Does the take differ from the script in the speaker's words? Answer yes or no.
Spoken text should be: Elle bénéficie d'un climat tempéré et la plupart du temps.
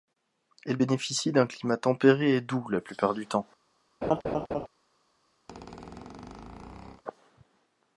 yes